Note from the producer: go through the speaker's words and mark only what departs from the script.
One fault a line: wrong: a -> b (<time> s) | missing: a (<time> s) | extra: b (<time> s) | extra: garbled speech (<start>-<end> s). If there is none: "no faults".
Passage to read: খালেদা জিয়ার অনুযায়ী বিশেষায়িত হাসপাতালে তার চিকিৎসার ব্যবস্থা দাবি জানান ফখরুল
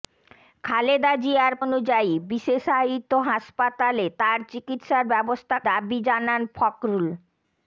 no faults